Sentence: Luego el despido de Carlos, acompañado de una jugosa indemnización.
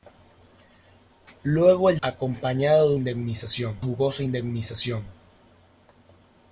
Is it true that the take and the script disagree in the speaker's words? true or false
true